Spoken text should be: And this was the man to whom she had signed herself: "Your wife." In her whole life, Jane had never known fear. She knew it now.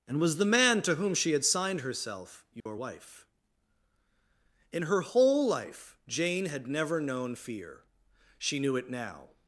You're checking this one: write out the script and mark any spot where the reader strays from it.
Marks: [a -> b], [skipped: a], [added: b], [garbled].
And [skipped: this] was the man to whom she had signed herself: "Your wife." In her whole life, Jane had never known fear. She knew it now.